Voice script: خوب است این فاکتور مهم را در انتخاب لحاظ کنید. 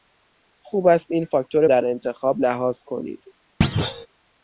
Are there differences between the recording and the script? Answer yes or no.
yes